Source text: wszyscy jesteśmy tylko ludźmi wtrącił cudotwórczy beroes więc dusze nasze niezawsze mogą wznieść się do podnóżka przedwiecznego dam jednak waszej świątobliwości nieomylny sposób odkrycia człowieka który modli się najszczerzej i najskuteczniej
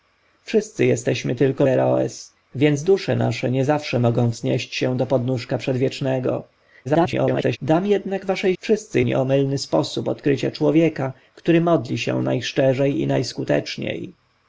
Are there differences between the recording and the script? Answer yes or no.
yes